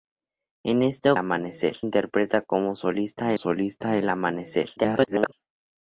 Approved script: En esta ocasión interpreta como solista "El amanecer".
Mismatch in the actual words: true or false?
true